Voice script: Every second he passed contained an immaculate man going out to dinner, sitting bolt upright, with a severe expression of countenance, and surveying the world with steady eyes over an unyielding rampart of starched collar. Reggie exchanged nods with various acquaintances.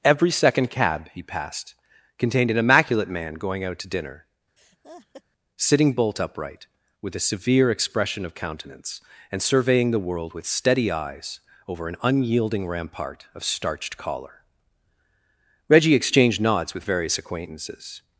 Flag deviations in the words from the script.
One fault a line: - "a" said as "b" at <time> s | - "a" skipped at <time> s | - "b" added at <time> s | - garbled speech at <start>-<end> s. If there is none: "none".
- "cab" added at 0.7 s